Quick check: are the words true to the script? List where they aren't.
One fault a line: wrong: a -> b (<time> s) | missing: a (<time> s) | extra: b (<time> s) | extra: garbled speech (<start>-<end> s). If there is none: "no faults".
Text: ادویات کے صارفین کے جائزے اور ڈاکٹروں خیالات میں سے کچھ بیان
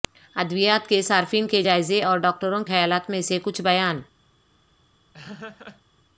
no faults